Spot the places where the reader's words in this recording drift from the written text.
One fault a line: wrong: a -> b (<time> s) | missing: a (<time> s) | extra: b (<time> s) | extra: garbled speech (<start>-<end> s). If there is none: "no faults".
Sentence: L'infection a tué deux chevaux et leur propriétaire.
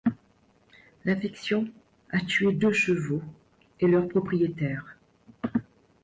no faults